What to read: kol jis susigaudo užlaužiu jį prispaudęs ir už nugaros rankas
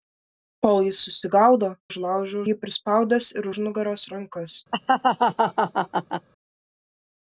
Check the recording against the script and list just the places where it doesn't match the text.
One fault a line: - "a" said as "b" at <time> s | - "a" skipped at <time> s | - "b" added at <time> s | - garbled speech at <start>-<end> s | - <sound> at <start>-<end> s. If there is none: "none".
- laugh at 4.7-6.3 s